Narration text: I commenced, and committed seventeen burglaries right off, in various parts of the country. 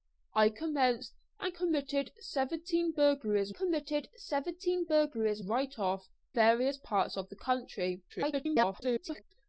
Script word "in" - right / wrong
wrong